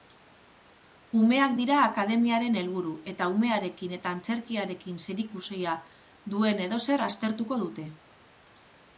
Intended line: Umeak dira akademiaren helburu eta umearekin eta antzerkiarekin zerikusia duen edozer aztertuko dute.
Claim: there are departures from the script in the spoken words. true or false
false